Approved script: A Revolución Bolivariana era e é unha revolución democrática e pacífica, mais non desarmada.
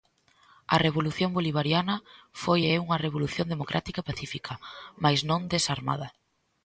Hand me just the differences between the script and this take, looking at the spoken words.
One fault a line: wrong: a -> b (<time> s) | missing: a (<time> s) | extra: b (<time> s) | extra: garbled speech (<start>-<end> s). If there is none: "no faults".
wrong: era -> foi (2.4 s)